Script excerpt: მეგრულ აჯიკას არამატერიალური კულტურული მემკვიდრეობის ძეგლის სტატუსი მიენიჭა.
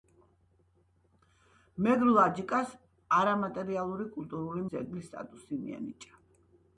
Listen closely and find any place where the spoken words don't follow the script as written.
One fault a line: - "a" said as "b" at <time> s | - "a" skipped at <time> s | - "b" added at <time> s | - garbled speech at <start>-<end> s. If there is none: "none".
- "მემკვიდრეობის" skipped at 4.6 s